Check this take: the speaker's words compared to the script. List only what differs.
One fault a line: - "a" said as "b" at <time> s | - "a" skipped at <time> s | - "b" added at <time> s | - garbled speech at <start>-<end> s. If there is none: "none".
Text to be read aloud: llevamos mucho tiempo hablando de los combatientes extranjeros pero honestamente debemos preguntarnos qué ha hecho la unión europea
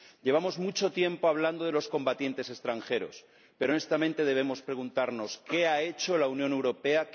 none